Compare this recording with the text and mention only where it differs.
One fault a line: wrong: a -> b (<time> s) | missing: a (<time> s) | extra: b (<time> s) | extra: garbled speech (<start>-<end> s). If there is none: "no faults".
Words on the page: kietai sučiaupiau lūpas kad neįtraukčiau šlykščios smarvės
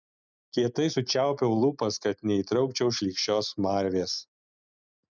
no faults